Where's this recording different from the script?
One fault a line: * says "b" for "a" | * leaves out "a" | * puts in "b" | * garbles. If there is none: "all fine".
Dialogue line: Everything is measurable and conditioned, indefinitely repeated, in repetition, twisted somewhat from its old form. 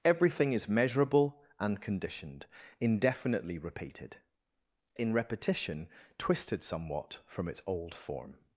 all fine